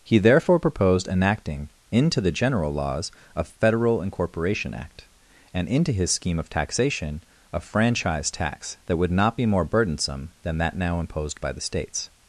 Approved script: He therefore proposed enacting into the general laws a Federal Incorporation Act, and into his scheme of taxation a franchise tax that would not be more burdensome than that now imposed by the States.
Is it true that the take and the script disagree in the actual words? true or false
false